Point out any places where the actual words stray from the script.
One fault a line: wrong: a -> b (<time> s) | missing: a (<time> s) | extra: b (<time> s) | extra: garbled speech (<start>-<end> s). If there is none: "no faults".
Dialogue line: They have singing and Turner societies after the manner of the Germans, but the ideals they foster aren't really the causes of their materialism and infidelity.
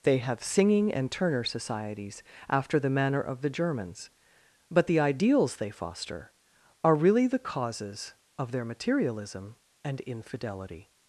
wrong: aren't -> are (6.8 s)